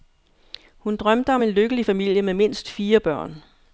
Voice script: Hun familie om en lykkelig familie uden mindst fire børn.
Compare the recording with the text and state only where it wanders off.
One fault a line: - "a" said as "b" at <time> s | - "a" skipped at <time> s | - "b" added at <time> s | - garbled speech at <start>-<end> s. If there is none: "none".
- "familie" said as "drømte" at 0.9 s
- "uden" said as "med" at 2.2 s